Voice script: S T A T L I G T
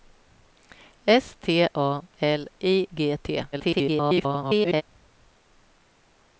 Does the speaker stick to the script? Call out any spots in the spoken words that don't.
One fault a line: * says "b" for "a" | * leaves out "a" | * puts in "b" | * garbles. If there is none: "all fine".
* leaves out "T"
* garbles